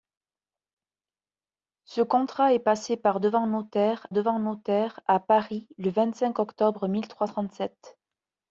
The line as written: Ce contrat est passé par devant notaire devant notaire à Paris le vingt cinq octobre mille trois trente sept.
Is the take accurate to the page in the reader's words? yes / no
yes